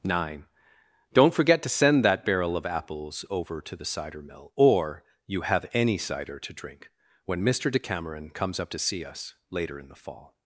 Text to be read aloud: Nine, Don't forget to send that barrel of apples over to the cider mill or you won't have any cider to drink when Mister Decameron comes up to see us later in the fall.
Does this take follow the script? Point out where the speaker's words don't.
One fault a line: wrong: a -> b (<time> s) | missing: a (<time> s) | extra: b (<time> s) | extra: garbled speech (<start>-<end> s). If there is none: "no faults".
missing: won't (5.4 s)